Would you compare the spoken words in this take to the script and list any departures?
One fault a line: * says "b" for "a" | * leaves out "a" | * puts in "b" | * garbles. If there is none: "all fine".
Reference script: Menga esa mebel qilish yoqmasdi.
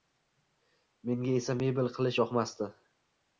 all fine